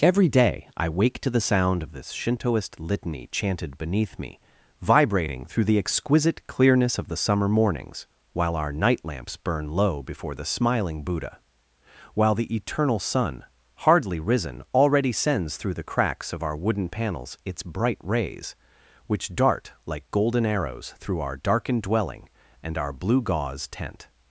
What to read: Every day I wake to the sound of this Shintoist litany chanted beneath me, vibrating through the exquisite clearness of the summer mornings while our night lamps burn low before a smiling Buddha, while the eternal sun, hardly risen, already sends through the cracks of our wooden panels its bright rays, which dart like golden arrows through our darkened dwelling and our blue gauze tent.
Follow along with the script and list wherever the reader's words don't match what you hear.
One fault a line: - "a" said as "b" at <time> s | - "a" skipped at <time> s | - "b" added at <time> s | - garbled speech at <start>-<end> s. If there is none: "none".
- "a" said as "the" at 10.3 s